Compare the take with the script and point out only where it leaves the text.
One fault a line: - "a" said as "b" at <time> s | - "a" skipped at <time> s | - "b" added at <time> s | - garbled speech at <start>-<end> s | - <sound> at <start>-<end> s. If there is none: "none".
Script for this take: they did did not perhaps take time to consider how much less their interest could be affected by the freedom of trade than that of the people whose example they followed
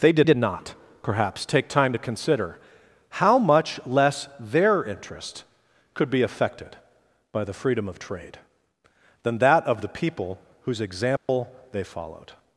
- dropout at 11.2-11.3 s